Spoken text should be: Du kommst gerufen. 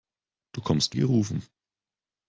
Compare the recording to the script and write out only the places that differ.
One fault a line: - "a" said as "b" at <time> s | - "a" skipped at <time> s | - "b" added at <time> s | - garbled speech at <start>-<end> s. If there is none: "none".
none